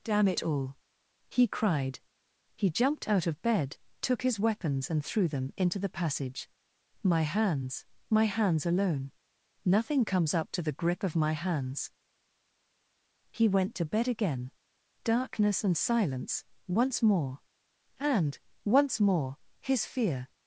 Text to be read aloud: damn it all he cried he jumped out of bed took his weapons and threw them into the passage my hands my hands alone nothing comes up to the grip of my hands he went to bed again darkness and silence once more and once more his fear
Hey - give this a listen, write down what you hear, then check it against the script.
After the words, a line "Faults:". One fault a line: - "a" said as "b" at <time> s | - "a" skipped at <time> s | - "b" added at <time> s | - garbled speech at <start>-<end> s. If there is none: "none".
damn it all he cried he jumped out of bed took his weapons and threw them into the passage my hands my hands alone nothing comes up to the grip of my hands he went to bed again darkness and silence once more and once more his fear
Faults:
none